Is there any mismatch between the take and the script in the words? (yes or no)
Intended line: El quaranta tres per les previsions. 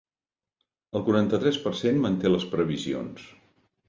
yes